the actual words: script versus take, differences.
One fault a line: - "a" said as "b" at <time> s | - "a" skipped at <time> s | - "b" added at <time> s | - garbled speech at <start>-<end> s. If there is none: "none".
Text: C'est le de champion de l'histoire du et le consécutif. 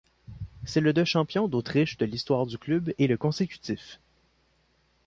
- "d'Autriche" added at 1.5 s
- "club" added at 2.6 s